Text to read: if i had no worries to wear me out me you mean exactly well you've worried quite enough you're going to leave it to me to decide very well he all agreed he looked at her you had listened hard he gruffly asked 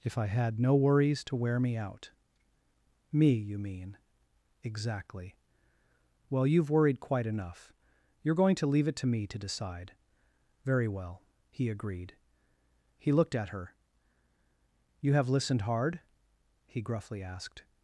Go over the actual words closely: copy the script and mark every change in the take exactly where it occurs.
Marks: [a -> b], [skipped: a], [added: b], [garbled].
if i had no worries to wear me out me you mean exactly well you've worried quite enough you're going to leave it to me to decide very well he [skipped: all] agreed he looked at her you [had -> have] listened hard he gruffly asked